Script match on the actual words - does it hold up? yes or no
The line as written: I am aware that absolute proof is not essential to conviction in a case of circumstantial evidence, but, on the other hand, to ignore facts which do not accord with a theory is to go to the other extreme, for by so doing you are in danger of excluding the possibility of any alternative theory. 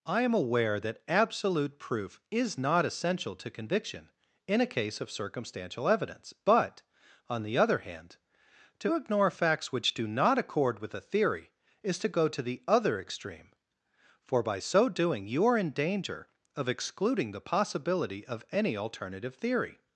yes